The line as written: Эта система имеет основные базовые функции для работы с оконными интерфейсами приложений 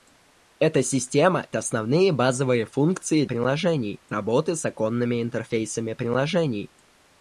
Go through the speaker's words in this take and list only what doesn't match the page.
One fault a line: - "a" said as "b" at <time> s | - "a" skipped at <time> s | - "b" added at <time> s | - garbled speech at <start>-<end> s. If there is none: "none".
- "имеет" skipped at 1.5 s
- "для" said as "приложений" at 3.2 s